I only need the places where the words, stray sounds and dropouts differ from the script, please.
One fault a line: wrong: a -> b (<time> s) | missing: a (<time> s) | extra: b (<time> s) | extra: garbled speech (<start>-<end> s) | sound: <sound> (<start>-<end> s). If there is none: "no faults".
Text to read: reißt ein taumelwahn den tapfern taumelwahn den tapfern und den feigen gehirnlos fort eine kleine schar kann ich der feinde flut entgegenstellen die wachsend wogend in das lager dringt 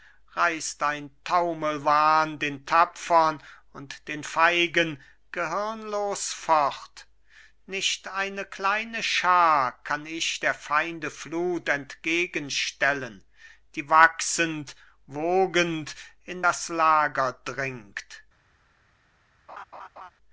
missing: taumelwahn den tapfern (3.4 s)
extra: nicht (7.7 s)
sound: laugh (19.5-20.1 s)